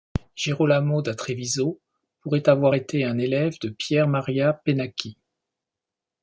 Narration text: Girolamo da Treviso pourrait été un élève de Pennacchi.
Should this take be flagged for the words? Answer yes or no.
yes